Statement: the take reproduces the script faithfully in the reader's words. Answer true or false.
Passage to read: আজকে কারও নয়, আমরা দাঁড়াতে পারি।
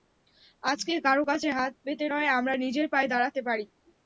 false